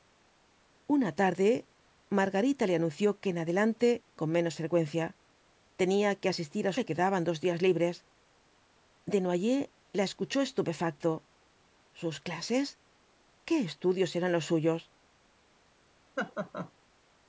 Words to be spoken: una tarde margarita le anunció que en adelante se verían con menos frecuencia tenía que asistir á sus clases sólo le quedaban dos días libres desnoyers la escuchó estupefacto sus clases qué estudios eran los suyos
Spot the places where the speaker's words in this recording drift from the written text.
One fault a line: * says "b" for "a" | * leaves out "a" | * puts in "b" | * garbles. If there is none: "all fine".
* leaves out "se verían"
* leaves out "sus clases sólo"